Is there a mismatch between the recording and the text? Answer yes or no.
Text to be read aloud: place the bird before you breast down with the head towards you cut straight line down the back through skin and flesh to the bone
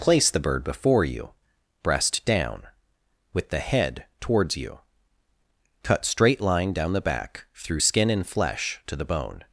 no